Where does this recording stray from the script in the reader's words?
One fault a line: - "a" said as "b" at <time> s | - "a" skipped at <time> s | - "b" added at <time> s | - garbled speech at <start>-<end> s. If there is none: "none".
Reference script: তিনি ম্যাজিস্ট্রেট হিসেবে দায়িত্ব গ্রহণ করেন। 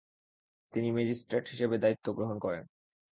none